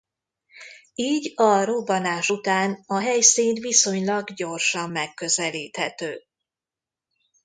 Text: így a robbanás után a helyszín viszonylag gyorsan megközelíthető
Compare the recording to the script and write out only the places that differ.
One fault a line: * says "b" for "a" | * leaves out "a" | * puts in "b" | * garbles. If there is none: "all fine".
all fine